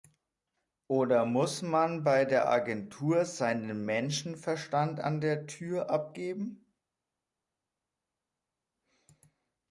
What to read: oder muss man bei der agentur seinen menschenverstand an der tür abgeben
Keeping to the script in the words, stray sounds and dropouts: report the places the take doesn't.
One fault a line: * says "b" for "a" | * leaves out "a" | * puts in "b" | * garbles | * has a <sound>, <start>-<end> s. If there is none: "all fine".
all fine